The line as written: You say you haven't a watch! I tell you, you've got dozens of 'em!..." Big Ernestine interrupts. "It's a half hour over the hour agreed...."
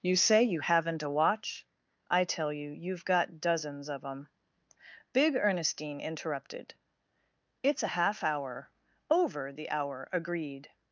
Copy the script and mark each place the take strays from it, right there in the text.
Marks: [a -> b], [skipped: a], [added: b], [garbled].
You say you haven't a watch! I tell you, you've got dozens of 'em!..." Big Ernestine [interrupts. -> interrupted] "It's a half hour over the hour agreed...."